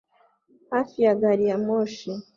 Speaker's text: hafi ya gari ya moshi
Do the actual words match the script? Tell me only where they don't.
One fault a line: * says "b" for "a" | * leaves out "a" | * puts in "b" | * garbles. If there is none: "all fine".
all fine